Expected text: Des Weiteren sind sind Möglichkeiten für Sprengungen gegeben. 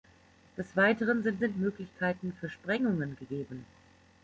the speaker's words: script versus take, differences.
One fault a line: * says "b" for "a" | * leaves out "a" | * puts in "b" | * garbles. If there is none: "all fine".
all fine